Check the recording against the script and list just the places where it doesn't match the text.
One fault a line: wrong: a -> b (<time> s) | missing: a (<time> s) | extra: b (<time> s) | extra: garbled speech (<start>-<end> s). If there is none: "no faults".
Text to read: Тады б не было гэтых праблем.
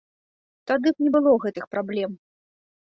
no faults